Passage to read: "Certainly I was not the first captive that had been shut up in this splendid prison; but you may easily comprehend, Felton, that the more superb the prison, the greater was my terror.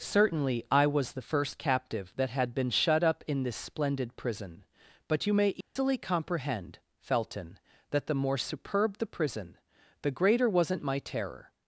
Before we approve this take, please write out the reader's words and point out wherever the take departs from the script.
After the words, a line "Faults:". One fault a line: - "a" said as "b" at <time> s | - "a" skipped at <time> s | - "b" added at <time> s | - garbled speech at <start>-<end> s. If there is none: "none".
"Certainly I was the first captive that had been shut up in this splendid prison; but you may easily comprehend, Felton, that the more superb the prison, the greater wasn't my terror.
Faults:
- "not" skipped at 1.1 s
- "was" said as "wasn't" at 10.5 s